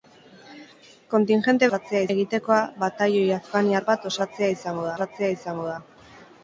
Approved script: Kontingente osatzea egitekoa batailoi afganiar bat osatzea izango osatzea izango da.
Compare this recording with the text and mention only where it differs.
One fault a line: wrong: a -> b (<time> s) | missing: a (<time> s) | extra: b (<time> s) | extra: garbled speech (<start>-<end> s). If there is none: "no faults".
no faults